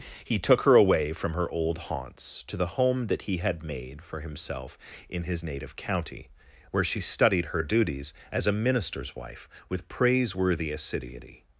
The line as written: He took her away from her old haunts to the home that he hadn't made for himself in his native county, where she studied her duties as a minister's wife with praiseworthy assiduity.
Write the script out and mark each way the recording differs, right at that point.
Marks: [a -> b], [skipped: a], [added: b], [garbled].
He took her away from her old haunts to the home that he [hadn't -> had] made for himself in his native county, where she studied her duties as a minister's wife with praiseworthy assiduity.